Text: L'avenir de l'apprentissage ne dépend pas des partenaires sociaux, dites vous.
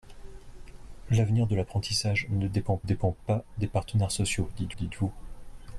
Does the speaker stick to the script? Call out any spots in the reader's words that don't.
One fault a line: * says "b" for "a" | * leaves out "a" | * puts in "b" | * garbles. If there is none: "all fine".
* puts in "dépend"
* puts in "dites"